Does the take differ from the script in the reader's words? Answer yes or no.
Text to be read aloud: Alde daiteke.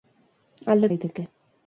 no